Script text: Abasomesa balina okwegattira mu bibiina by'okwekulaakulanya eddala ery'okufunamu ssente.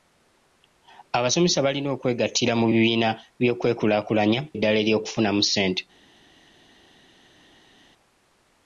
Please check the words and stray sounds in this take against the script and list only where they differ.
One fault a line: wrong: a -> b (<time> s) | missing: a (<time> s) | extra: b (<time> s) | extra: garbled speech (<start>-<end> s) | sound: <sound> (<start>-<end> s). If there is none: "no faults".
no faults